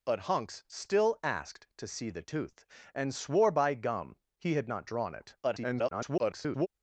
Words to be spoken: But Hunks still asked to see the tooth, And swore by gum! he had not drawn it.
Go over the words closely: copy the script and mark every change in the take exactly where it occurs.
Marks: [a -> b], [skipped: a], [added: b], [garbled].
But Hunks still asked to see the tooth, And swore by gum! he had not drawn it. [garbled]